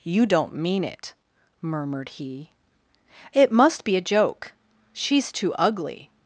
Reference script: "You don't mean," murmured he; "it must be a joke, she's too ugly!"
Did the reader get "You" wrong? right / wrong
right